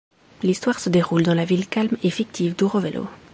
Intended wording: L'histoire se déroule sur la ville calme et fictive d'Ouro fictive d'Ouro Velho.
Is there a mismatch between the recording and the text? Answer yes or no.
yes